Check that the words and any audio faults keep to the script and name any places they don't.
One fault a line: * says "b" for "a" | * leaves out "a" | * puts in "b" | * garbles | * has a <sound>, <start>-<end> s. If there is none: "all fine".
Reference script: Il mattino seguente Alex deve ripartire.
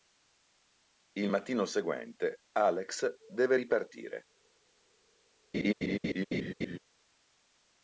* has a laugh, 5.5-6.8 s